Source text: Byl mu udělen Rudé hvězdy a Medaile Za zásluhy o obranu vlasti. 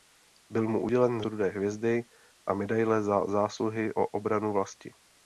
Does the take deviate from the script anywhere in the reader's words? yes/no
no